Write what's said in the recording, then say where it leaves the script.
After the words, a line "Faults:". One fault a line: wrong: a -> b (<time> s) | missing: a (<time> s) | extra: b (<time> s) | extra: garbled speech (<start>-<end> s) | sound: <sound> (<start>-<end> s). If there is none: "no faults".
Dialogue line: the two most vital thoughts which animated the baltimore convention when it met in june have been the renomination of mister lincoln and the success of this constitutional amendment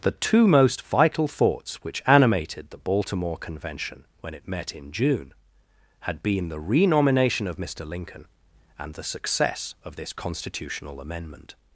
the two most vital thoughts which animated the baltimore convention when it met in june had been the renomination of mister lincoln and the success of this constitutional amendment
Faults:
wrong: have -> had (6.0 s)